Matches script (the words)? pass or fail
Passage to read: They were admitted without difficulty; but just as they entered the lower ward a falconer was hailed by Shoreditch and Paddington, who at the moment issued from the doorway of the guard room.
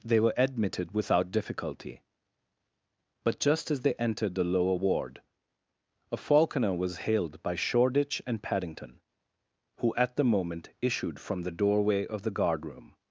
pass